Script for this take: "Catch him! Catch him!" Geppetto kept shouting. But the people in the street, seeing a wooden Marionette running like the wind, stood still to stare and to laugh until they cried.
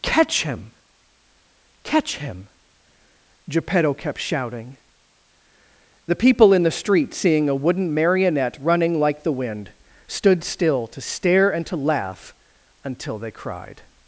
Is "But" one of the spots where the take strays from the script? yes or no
yes